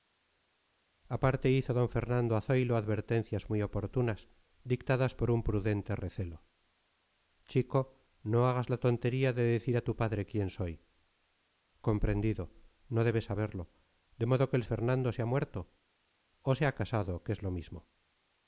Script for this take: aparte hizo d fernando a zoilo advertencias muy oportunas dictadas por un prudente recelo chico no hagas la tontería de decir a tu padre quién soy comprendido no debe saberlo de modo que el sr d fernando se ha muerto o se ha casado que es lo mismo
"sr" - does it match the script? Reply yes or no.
no